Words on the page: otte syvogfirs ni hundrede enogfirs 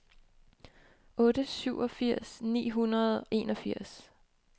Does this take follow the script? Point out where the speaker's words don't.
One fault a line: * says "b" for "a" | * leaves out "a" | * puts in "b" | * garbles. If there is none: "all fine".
all fine